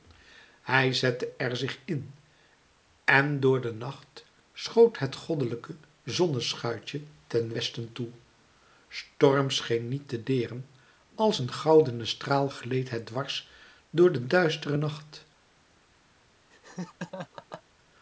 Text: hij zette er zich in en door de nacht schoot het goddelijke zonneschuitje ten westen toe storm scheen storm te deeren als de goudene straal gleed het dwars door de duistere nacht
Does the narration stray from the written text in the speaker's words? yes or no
yes